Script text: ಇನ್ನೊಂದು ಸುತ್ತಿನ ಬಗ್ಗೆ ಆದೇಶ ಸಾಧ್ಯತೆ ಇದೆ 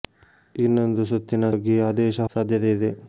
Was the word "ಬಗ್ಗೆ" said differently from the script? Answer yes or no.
no